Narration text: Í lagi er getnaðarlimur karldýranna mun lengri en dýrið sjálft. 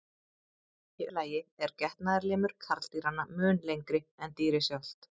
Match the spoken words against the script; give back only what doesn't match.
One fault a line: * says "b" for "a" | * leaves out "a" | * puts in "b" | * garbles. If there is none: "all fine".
all fine